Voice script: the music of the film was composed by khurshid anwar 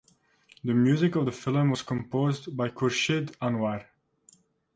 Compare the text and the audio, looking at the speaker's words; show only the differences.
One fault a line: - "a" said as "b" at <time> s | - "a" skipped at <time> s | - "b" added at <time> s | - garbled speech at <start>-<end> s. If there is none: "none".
none